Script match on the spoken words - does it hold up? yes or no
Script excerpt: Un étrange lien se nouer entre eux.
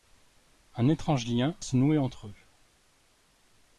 yes